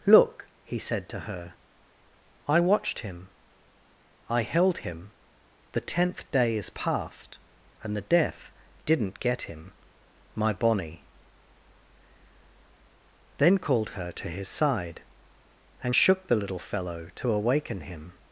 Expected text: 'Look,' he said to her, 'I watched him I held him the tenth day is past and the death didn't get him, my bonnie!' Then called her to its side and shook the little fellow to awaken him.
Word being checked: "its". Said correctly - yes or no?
no